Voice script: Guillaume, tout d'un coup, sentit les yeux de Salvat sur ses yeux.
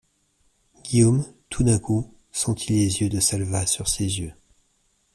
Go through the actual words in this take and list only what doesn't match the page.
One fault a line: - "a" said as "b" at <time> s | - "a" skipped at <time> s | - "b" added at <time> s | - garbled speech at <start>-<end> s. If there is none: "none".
none